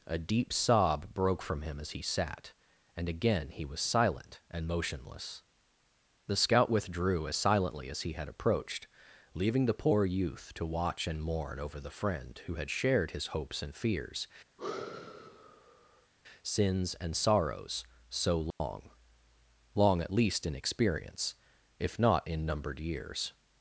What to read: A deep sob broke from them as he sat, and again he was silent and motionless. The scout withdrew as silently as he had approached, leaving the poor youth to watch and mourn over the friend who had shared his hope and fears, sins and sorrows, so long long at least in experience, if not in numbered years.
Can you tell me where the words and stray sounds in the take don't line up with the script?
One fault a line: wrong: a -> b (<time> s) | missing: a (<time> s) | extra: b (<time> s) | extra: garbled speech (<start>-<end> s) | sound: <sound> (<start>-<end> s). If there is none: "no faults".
wrong: them -> him (1.6 s)
wrong: hope -> hopes (13.3 s)
sound: sigh (14.6-16.1 s)
sound: dropout (18.5-18.6 s)